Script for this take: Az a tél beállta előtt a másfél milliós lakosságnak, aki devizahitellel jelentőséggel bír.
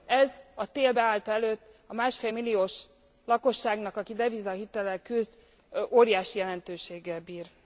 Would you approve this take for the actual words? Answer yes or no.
no